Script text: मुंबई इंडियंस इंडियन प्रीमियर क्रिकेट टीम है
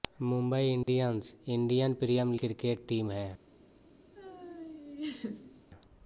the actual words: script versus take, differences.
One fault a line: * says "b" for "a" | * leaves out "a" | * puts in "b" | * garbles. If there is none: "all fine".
all fine